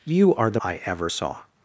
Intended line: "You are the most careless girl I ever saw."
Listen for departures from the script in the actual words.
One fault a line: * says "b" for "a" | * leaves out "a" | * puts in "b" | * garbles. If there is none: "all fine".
* leaves out "most careless girl"